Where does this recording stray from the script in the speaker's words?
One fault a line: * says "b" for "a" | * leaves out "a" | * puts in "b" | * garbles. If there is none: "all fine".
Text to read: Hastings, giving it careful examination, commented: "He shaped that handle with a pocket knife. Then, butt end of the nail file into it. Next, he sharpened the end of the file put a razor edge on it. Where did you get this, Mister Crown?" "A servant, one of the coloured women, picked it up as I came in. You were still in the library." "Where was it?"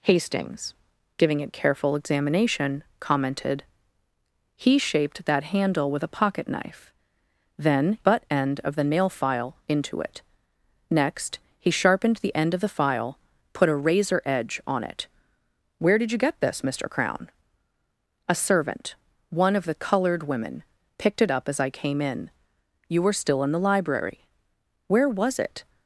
all fine